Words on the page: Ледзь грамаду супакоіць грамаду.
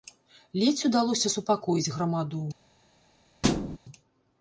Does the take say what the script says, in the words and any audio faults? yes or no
no